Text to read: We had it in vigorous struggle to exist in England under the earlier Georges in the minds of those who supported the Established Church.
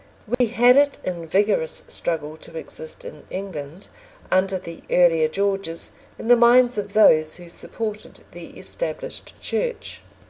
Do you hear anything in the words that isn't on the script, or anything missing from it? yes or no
no